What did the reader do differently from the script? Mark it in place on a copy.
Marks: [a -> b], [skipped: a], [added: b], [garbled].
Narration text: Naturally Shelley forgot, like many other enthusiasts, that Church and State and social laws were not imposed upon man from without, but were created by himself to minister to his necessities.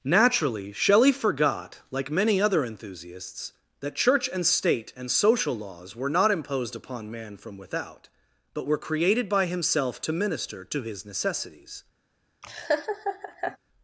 Naturally Shelley forgot, like many other enthusiasts, that Church and State and social laws were not imposed upon man from without, but were created by himself to minister to his necessities.